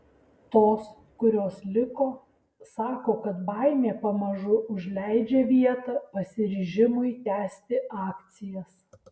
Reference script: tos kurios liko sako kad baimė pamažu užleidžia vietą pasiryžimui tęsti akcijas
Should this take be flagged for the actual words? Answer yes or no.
no